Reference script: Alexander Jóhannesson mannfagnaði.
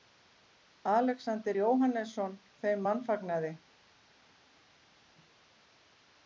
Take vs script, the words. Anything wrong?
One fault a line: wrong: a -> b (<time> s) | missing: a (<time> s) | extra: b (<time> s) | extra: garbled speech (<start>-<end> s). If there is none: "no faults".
extra: þeim (2.6 s)